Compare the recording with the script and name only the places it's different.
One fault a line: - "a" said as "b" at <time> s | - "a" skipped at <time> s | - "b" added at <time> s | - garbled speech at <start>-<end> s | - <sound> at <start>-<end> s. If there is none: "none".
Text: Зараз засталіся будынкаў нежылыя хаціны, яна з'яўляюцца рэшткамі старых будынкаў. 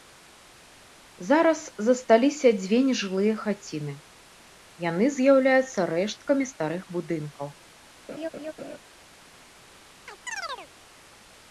- "будынкаў" said as "дзве" at 2.6 s
- "яна" said as "яны" at 4.9 s
- laugh at 8.1-8.8 s
- chirp at 10.1-10.7 s